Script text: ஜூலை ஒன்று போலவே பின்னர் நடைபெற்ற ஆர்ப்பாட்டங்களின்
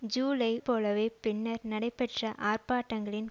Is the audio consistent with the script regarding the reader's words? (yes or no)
no